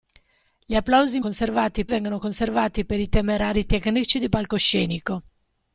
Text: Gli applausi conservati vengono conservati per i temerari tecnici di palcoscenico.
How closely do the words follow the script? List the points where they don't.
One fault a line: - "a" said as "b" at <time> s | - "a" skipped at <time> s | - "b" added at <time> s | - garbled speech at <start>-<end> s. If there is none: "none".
none